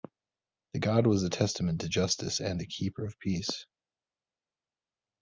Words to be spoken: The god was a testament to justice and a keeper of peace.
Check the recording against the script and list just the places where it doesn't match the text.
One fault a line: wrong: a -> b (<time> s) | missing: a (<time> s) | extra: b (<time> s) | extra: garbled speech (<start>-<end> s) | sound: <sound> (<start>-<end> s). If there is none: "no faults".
no faults